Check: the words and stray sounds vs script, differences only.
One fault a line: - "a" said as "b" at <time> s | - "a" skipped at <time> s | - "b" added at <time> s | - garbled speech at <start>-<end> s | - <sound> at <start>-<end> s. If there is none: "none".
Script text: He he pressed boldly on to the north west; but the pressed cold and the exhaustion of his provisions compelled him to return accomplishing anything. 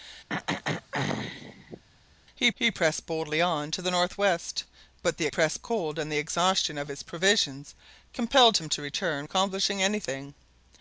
- throat clearing at 0.3-1.8 s